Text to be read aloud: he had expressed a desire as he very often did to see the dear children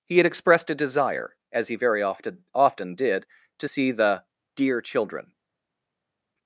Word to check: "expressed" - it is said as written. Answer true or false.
true